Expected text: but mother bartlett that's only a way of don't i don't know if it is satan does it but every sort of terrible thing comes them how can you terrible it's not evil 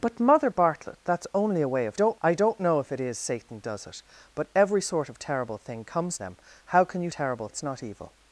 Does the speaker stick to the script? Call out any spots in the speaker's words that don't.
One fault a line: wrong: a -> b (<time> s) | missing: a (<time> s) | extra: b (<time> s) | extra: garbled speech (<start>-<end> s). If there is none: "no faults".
no faults